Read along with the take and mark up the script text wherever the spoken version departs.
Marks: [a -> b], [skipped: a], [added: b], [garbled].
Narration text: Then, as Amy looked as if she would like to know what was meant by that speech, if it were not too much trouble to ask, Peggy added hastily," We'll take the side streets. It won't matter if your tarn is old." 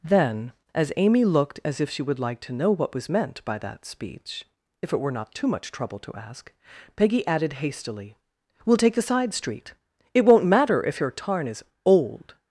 Then, as Amy looked as if she would like to know what was meant by that speech, if it were not too much trouble to ask, Peggy added hastily," We'll take the side [streets. -> street] It won't matter if your tarn is old."